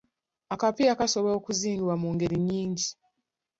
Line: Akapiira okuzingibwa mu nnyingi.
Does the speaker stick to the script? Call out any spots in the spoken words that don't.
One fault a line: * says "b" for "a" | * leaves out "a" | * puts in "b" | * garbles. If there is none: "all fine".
* puts in "kasobola"
* puts in "ngeri"